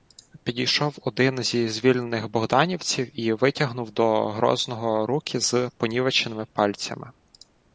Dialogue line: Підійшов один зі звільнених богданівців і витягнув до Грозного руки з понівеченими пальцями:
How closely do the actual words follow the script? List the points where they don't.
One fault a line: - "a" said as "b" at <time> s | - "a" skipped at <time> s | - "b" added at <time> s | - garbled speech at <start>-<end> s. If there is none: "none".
none